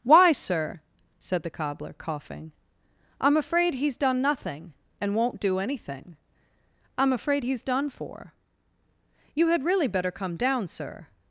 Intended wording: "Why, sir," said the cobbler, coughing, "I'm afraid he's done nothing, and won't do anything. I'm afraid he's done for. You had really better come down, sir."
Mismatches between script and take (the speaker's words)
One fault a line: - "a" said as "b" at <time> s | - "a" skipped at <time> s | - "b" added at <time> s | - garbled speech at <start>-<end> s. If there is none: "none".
none